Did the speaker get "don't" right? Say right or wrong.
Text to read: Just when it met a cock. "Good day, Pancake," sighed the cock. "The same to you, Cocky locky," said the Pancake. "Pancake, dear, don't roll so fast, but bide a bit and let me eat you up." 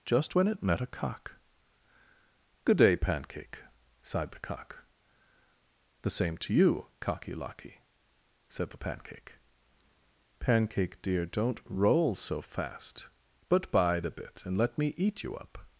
right